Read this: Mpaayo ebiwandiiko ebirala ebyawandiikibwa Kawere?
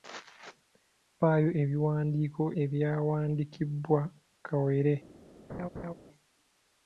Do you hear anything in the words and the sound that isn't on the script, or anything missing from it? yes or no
yes